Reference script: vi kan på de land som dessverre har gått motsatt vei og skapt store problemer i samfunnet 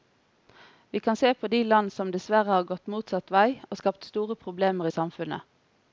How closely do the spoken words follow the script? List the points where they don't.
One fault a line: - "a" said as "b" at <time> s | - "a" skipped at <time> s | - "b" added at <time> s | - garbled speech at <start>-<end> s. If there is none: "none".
- "se" added at 1.1 s